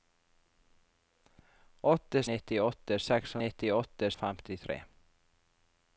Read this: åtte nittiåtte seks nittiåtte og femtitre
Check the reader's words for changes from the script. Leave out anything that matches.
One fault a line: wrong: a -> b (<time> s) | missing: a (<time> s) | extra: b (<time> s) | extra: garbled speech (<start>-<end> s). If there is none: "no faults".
no faults